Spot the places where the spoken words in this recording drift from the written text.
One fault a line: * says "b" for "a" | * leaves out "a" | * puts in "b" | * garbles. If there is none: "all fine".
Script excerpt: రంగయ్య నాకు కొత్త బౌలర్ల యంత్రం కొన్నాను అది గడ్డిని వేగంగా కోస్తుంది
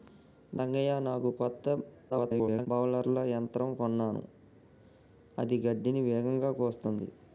* garbles